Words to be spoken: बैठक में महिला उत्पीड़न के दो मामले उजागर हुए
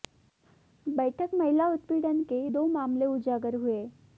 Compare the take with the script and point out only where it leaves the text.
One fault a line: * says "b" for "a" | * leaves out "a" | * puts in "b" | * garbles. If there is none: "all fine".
* leaves out "में"